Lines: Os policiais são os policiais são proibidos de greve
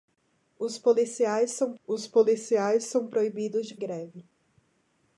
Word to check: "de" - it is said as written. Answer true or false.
true